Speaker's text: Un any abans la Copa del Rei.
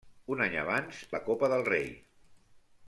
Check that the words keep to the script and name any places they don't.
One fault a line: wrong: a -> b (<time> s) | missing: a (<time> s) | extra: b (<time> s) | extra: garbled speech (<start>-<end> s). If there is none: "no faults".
no faults